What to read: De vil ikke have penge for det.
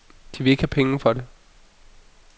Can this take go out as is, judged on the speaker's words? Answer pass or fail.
pass